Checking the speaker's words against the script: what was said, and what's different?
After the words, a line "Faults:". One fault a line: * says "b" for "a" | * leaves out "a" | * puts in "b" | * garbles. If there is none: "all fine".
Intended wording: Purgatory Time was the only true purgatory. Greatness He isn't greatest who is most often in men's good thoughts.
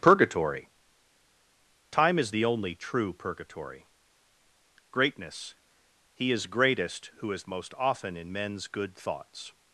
Purgatory Time is the only true purgatory. Greatness He is greatest who is most often in men's good thoughts.
Faults:
* says "is" for "was"
* says "is" for "isn't"